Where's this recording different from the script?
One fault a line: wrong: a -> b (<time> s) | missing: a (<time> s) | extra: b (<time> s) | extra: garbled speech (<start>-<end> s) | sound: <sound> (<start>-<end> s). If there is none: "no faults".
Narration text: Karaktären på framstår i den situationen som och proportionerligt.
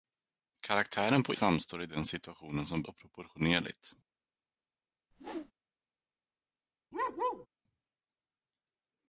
sound: whoosh (5.1-5.5 s)
sound: bark (6.9-7.5 s)